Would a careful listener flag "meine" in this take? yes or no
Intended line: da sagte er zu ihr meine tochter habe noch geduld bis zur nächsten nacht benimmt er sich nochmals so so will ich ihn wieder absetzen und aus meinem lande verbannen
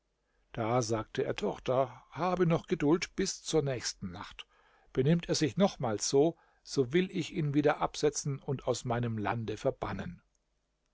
yes